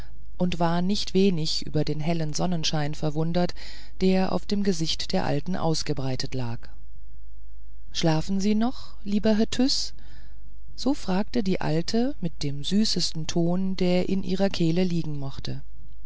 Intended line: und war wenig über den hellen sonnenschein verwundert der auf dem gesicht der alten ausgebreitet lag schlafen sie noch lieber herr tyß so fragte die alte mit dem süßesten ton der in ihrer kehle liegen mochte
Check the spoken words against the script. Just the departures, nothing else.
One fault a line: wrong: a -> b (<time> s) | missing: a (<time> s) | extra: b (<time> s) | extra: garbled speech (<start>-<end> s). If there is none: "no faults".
extra: nicht (0.8 s)